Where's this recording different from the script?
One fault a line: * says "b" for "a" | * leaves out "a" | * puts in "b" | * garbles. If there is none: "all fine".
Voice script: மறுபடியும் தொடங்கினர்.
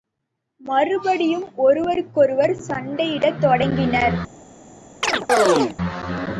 * puts in "ஒருவருக்கொருவர் சண்டையிடத்"